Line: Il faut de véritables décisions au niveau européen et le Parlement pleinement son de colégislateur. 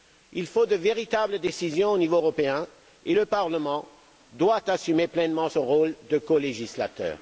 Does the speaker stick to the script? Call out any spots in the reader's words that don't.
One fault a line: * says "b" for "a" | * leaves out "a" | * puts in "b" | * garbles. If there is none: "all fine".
* puts in "doit assumer"
* puts in "rôle"